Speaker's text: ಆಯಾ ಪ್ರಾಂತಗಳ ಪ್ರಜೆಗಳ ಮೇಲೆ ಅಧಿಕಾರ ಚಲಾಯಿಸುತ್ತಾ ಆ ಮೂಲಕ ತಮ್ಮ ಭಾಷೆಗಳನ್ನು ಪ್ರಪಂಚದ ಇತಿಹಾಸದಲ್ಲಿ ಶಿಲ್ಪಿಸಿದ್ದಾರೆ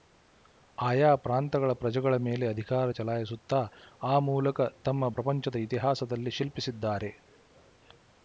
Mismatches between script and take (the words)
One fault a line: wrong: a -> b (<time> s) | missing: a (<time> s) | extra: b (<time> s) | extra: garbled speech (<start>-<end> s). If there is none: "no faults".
missing: ಭಾಷೆಗಳನ್ನು (5.1 s)